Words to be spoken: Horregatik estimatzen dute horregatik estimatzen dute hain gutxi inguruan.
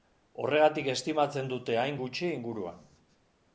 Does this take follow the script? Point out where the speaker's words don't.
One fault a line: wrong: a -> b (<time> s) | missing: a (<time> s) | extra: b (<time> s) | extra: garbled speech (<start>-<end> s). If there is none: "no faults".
missing: horregatik estimatzen dute (1.8 s)